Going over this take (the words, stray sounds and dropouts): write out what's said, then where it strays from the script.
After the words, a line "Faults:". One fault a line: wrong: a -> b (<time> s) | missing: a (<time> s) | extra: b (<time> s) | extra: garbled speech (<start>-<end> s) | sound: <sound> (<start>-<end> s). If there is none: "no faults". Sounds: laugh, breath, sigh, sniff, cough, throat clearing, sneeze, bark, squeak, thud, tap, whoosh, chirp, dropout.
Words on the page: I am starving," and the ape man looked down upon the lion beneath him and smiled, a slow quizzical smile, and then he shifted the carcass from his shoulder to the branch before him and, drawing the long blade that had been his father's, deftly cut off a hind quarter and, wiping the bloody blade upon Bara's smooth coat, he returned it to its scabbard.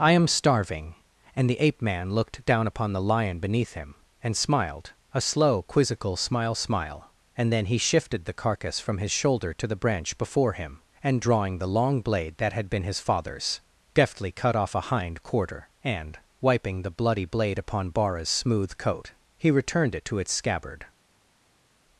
I am starving," and the ape man looked down upon the lion beneath him and smiled, a slow quizzical smile smile, and then he shifted the carcass from his shoulder to the branch before him and, drawing the long blade that had been his father's, deftly cut off a hind quarter and, wiping the bloody blade upon Bara's smooth coat, he returned it to its scabbard.
Faults:
extra: smile (6.5 s)